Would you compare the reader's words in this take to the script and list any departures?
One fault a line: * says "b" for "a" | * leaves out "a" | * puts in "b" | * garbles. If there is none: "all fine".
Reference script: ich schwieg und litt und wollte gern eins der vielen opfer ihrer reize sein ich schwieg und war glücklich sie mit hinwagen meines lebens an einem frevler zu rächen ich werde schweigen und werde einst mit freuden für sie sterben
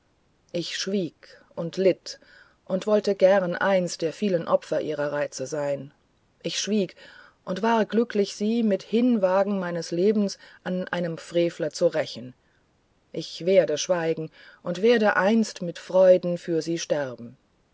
all fine